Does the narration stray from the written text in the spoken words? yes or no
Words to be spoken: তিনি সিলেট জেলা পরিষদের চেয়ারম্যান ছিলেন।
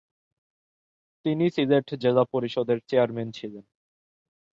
no